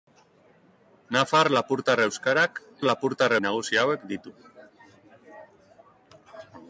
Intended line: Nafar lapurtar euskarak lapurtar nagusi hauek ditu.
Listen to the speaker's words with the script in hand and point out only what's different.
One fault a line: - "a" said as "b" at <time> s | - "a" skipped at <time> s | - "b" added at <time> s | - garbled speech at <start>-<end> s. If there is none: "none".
none